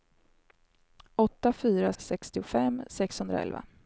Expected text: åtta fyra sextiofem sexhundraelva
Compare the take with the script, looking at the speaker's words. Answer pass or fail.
pass